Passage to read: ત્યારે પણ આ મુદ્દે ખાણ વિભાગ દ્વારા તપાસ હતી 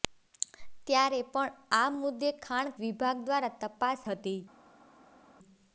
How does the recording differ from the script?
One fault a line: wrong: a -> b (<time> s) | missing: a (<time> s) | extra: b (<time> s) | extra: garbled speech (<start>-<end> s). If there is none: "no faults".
no faults